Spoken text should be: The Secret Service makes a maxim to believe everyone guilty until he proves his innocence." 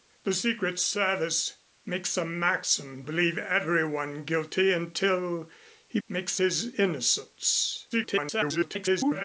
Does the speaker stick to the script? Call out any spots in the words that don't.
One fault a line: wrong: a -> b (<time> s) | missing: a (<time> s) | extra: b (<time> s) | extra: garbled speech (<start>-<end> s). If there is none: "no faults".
missing: to (3.0 s)
wrong: proves -> makes (6.1 s)
extra: garbled speech (7.9-9.2 s)